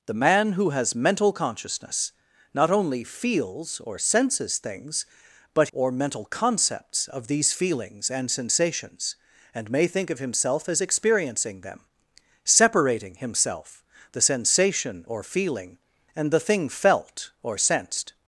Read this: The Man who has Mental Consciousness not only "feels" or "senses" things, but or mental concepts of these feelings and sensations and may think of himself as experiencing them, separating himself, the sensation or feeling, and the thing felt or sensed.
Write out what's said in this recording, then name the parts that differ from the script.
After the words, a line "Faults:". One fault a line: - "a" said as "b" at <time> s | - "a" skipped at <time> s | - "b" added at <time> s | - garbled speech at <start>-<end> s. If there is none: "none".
The Man who has Mental Consciousness not only "feels" or "senses" things, but or mental concepts of these feelings and sensations and may think of himself as experiencing them, separating himself, the sensation or feeling, and the thing felt or sensed.
Faults:
none